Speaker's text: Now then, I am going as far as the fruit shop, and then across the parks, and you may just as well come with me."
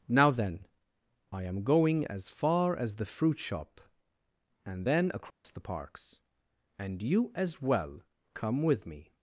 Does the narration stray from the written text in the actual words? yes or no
yes